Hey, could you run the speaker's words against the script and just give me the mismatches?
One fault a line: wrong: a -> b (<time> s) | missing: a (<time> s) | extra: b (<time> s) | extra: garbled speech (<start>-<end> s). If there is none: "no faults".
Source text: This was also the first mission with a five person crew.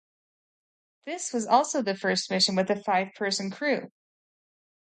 no faults